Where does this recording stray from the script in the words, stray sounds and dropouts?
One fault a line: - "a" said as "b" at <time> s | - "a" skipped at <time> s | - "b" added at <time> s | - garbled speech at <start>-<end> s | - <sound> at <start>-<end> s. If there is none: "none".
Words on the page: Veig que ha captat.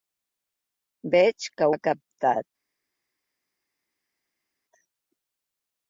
none